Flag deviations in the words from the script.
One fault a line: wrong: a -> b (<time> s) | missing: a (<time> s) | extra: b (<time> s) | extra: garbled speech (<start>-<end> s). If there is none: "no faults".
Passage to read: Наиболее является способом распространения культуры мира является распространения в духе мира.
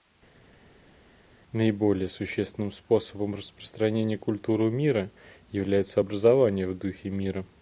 wrong: является -> существенным (2.1 s)
wrong: распространения -> образование (6.0 s)